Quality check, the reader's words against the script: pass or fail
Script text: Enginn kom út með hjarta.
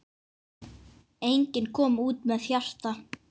pass